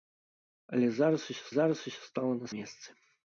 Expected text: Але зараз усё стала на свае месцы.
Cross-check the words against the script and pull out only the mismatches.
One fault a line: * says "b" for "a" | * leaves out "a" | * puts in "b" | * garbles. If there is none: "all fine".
* puts in "зараз усё"
* leaves out "свае"